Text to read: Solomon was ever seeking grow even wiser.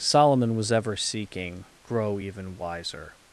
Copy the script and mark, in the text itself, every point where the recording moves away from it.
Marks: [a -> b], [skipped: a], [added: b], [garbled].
Solomon was ever seeking grow even wiser.